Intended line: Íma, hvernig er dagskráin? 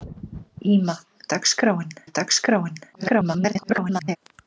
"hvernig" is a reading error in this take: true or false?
true